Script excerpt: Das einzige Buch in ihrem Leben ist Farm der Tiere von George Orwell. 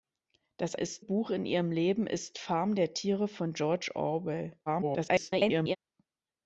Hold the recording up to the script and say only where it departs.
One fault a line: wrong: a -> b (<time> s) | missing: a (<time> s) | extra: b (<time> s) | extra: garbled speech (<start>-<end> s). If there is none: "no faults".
wrong: einzige -> ist (0.7 s)
extra: garbled speech (4.7-5.8 s)